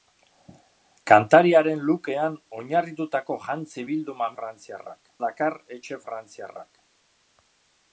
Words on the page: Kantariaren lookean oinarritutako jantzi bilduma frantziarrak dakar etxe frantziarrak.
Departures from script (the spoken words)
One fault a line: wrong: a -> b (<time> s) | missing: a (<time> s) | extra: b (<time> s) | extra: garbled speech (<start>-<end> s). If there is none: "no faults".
no faults